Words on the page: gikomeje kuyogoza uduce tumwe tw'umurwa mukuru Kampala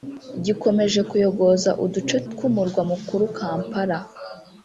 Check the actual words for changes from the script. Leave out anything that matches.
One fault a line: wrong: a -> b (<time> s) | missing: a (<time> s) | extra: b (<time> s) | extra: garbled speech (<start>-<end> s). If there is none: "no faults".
missing: tumwe (2.2 s)